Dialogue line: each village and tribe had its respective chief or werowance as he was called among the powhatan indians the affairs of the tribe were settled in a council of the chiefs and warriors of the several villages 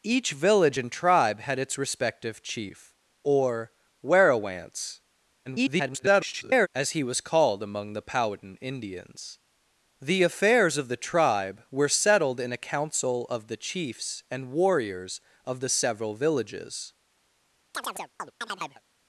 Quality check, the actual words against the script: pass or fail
fail